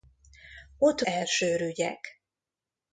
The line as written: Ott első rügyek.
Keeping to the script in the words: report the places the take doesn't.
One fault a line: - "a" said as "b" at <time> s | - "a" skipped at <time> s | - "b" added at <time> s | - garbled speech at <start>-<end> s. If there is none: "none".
none